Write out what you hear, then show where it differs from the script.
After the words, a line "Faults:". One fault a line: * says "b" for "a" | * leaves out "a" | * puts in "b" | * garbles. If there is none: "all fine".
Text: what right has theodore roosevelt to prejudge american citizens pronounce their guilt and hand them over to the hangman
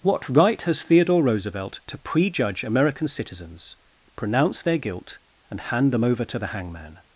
what right has theodore roosevelt to prejudge american citizens pronounce their guilt and hand them over to the hangman
Faults:
all fine